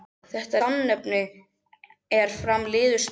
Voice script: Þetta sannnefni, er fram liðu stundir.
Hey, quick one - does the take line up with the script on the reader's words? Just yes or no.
yes